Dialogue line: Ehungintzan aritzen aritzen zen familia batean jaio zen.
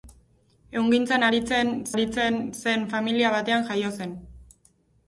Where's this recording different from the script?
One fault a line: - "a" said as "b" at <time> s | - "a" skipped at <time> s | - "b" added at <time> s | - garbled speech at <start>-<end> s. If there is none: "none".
none